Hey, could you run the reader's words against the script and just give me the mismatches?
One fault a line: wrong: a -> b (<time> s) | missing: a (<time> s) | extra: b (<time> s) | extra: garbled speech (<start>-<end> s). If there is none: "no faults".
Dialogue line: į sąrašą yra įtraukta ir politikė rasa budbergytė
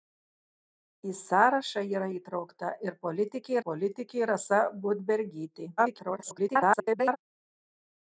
extra: politikė (3.7 s)
extra: garbled speech (5.8-7.2 s)